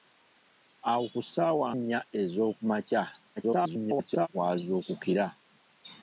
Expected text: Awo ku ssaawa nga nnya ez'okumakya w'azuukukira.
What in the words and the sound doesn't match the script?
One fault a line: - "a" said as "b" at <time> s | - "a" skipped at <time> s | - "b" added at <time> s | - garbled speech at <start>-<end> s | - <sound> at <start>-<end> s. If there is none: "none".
- "nga" skipped at 1.7 s
- garbled speech at 3.4-4.3 s